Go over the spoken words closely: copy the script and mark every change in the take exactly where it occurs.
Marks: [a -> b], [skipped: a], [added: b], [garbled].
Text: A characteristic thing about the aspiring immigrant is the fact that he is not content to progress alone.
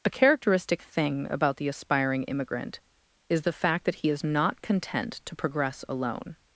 A characteristic thing about the aspiring immigrant is the fact that he is not content to progress alone.